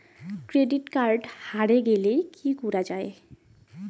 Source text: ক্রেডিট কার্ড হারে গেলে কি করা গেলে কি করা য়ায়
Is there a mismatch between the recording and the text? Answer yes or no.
yes